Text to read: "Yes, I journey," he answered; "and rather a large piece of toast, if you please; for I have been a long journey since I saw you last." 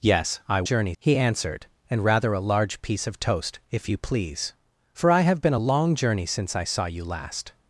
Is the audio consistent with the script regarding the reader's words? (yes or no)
yes